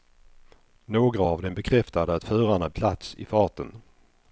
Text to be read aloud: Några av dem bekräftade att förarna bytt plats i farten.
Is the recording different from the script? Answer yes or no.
yes